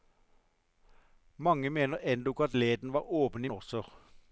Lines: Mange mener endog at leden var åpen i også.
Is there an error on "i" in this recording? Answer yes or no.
no